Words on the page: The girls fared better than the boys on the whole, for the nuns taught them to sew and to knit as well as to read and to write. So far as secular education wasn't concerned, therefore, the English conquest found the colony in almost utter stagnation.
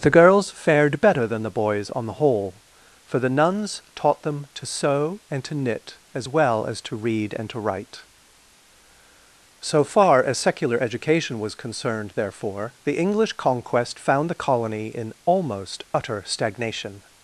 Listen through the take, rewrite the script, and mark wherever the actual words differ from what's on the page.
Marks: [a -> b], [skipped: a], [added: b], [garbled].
The girls fared better than the boys on the whole, for the nuns taught them to sew and to knit as well as to read and to write. So far as secular education [wasn't -> was] concerned, therefore, the English conquest found the colony in almost utter stagnation.